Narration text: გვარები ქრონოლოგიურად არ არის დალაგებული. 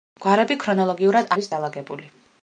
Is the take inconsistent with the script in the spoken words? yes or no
yes